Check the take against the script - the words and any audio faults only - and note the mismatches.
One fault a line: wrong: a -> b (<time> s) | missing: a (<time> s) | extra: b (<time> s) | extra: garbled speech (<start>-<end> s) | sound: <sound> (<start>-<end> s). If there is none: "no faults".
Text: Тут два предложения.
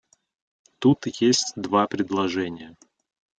extra: есть (1.1 s)